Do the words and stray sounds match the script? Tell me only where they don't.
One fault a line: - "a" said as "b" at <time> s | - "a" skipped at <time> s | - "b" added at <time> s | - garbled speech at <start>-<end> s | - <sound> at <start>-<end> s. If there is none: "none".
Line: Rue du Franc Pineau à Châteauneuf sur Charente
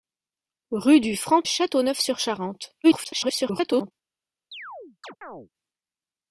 - "Pineau à" skipped at 1.4 s
- garbled speech at 2.8-3.9 s
- chirp at 4.5-5.5 s